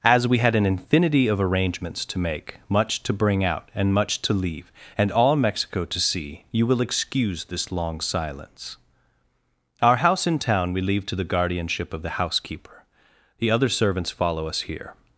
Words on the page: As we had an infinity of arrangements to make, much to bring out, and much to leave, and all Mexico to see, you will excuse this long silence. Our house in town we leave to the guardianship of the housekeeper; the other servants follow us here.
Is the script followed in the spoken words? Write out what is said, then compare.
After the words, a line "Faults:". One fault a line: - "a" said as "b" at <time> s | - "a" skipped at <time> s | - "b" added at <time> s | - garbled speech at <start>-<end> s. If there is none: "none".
As we had an infinity of arrangements to make, much to bring out, and much to leave, and all Mexico to see, you will excuse this long silence. Our house in town we leave to the guardianship of the housekeeper; the other servants follow us here.
Faults:
none